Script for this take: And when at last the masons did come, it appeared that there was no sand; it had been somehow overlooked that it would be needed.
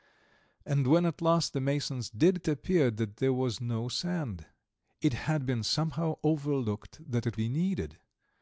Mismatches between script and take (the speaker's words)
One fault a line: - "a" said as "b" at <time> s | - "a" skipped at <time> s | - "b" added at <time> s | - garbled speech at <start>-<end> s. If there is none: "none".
- "come it" skipped at 2.4 s
- "would" skipped at 7.4 s